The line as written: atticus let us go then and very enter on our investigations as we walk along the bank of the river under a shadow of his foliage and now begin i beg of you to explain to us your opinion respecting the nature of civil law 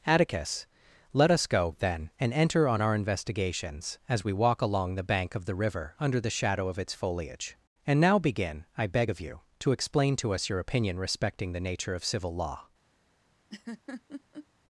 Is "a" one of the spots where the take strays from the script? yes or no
yes